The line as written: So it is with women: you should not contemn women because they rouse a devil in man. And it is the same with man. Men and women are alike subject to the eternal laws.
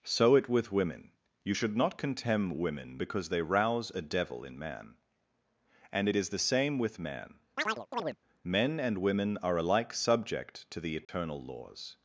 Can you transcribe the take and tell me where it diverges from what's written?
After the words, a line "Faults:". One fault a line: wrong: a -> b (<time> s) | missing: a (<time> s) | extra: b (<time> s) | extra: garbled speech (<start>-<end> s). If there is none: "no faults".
So it with women: you should not contemn women because they rouse a devil in man. And it is the same with man. Men and women are alike subject to the eternal laws.
Faults:
missing: is (0.5 s)